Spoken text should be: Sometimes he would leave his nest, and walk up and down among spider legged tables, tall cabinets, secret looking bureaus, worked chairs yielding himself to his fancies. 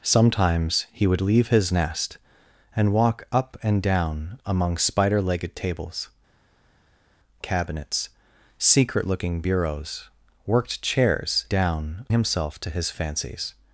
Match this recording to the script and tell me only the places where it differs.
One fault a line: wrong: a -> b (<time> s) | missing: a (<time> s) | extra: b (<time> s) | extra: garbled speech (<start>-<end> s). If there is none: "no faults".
missing: tall (6.1 s)
wrong: yielding -> down (11.5 s)